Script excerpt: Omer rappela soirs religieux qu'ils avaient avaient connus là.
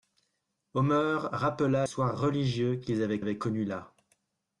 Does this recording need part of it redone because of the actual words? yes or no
no